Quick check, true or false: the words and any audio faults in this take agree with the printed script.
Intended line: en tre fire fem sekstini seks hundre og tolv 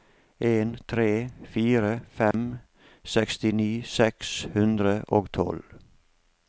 false